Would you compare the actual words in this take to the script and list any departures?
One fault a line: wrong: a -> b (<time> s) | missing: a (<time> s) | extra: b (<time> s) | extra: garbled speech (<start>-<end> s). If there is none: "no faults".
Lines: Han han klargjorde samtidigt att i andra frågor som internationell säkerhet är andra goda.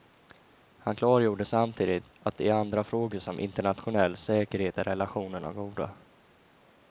missing: han (0.9 s)
wrong: andra -> relationerna (4.8 s)